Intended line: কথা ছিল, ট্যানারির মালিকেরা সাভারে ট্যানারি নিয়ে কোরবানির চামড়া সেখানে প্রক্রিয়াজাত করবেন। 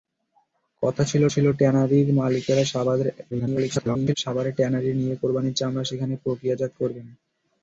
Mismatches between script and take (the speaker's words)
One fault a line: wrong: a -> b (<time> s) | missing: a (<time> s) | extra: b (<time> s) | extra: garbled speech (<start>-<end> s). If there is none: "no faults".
extra: ছিল (1.3 s)
extra: garbled speech (3.3-4.1 s)